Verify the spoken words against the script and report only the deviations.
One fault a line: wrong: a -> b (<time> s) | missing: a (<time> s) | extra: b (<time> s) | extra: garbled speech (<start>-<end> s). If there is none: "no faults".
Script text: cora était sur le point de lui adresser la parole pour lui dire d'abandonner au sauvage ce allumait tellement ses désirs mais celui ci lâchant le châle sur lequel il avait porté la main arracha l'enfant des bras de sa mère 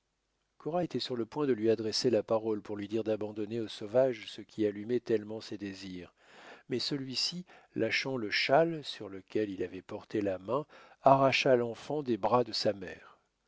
extra: qui (4.4 s)